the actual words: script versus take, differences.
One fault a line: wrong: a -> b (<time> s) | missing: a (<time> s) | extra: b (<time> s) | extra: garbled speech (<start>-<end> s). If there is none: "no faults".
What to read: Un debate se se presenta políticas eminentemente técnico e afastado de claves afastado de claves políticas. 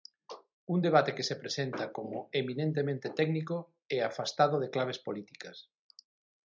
wrong: se -> que (1.2 s)
wrong: políticas -> como (2.0 s)
missing: afastado de claves (5.0 s)